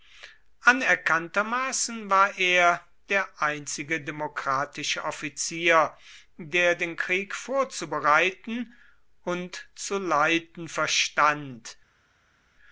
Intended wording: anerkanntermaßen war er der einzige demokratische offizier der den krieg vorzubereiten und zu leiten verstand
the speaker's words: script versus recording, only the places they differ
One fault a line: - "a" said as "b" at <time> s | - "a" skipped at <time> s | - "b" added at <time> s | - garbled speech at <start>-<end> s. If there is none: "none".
none